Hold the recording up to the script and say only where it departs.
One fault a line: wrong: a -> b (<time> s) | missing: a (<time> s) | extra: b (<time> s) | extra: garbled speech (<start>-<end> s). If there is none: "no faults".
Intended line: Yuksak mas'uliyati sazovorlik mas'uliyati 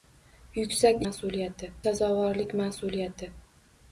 no faults